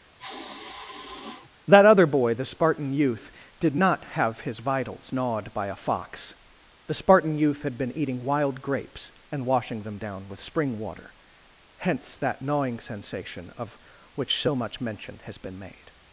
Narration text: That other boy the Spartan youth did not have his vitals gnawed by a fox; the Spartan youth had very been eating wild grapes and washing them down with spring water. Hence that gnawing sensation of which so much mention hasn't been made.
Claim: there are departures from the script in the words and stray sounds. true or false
true